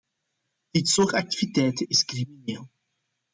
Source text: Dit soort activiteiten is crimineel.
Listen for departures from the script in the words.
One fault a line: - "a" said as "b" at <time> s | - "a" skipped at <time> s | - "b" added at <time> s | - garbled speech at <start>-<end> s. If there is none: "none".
none